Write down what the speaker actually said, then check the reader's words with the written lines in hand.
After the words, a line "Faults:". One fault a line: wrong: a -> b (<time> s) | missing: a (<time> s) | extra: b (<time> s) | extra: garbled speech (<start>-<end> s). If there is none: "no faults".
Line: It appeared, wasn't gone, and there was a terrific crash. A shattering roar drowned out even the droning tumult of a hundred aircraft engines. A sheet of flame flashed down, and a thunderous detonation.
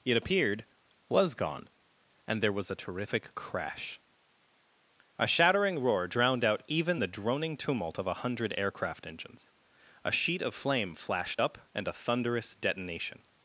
It appeared, was gone, and there was a terrific crash. A shattering roar drowned out even the droning tumult of a hundred aircraft engines. A sheet of flame flashed up, and a thunderous detonation.
Faults:
wrong: wasn't -> was (1.1 s)
wrong: down -> up (11.4 s)